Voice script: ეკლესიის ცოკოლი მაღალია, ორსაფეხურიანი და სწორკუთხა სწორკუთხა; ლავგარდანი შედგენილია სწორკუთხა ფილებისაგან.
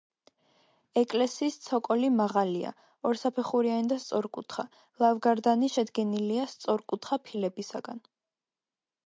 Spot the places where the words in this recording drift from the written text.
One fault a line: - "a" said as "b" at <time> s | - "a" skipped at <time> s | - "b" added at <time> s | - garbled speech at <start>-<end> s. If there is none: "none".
- "სწორკუთხა" skipped at 4.7 s